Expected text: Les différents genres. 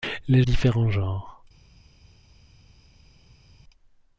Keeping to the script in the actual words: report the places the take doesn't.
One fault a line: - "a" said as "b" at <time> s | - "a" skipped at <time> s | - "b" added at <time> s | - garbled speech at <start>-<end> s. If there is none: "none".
none